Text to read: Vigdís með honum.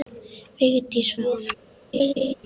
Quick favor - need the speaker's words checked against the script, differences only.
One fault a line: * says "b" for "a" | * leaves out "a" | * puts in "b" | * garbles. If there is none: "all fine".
all fine